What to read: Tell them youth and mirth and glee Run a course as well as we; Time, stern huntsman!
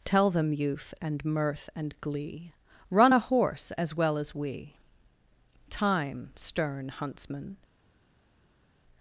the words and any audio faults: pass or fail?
fail